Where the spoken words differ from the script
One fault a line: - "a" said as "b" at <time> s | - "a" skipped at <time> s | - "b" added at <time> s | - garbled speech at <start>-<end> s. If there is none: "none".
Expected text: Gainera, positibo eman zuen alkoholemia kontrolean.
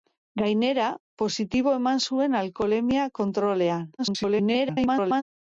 - garbled speech at 4.0-5.2 s